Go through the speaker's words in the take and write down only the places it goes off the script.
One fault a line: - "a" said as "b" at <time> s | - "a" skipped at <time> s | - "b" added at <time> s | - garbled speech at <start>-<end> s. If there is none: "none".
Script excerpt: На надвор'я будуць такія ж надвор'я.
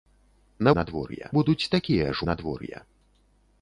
none